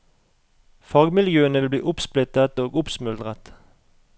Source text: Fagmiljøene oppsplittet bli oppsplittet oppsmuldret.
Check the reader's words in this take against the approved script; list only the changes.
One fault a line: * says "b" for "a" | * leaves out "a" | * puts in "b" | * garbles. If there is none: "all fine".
* says "vil" for "oppsplittet"
* puts in "og"